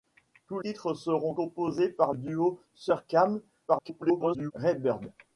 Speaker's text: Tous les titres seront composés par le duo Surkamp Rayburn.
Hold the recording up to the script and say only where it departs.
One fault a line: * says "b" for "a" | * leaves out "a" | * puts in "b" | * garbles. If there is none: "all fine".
* leaves out "les"
* leaves out "le"
* garbles